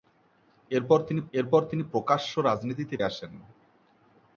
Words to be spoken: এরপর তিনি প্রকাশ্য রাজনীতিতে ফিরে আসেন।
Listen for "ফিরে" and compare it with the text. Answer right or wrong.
wrong